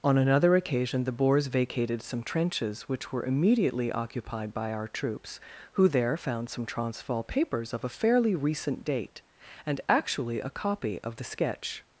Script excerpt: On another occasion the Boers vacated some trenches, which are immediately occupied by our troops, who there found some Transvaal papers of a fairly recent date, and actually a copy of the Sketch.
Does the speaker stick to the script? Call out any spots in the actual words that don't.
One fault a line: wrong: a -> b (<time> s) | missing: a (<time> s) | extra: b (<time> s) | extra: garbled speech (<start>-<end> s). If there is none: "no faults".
wrong: are -> were (3.1 s)